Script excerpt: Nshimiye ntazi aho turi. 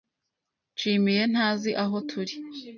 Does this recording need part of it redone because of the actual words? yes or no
no